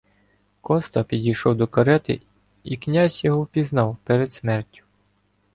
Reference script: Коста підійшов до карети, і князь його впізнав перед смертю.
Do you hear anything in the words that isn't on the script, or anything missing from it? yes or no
no